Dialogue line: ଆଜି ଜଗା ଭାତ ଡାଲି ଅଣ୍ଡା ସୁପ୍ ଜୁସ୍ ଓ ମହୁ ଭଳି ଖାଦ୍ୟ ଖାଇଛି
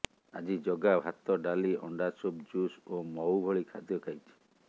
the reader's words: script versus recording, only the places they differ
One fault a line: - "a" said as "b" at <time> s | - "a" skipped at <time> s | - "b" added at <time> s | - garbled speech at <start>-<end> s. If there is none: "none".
none